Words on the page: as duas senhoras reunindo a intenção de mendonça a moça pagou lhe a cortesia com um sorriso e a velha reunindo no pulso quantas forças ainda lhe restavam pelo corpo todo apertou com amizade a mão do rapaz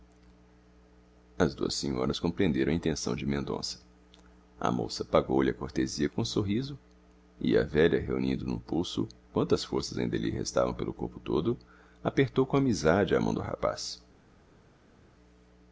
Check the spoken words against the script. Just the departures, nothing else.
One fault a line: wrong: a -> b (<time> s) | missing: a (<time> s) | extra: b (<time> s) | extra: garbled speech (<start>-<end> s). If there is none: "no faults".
wrong: reunindo -> compreenderam (2.2 s)